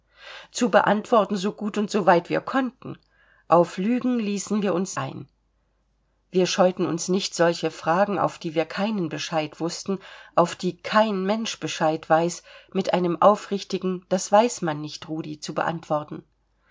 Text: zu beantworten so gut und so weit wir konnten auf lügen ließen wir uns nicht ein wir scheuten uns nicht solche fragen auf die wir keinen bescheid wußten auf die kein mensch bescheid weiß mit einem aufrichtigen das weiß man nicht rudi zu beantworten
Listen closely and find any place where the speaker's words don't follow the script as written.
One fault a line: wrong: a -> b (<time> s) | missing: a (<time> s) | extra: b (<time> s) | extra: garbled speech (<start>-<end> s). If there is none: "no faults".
missing: nicht (5.0 s)